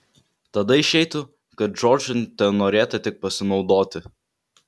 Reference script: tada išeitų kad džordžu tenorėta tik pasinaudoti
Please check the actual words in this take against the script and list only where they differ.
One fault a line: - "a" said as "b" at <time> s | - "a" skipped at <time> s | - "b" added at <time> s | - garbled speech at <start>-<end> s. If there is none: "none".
none